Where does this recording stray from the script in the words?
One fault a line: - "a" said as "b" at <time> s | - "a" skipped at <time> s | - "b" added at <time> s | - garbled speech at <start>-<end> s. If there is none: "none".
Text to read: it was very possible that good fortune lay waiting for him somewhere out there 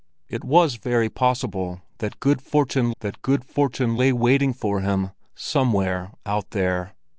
- "that good fortune" added at 3.0 s